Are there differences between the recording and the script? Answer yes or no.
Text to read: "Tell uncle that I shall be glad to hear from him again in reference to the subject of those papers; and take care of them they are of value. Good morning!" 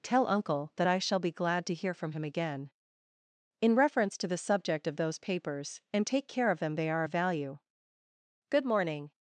no